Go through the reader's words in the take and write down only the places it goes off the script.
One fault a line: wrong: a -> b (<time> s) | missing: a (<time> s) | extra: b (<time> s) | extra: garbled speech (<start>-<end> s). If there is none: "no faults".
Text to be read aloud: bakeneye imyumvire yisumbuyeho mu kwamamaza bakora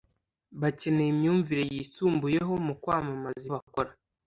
no faults